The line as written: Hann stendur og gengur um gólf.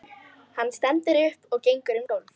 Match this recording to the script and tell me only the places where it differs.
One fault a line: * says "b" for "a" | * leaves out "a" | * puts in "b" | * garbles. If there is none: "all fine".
* puts in "upp"